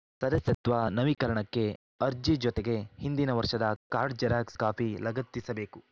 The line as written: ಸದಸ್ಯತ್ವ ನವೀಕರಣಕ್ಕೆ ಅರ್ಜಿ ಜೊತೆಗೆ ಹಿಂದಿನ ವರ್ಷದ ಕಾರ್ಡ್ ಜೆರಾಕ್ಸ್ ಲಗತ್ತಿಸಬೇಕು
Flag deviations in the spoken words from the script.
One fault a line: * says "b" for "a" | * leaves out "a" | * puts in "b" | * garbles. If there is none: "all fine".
* puts in "ಕಾಪಿ"